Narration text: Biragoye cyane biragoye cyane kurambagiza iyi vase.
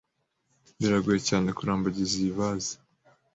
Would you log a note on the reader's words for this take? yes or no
yes